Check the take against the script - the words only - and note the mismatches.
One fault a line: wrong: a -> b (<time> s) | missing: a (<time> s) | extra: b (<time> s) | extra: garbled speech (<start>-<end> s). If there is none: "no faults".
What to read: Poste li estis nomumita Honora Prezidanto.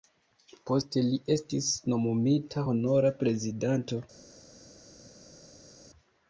no faults